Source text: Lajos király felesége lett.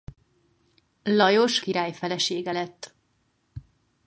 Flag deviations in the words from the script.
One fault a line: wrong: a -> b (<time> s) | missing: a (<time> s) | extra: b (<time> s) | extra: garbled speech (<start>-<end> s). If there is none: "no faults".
no faults